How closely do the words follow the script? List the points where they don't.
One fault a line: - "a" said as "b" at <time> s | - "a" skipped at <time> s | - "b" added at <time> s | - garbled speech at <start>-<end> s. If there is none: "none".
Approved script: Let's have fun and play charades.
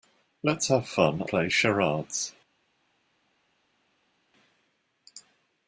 - "and" skipped at 1.2 s